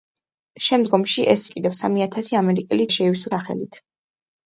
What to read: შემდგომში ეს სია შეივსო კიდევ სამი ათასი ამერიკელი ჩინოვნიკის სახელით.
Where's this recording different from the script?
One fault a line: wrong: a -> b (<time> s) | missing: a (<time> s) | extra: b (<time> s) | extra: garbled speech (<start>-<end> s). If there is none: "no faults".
missing: სია შეივსო (1.4 s)
wrong: ჩინოვნიკის -> შეივსო (2.9 s)